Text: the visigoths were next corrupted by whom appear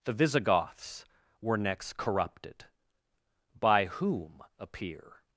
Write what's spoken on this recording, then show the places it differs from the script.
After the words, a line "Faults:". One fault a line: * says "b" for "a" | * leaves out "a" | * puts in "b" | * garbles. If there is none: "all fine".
the visigoths were next corrupted by whom appear
Faults:
all fine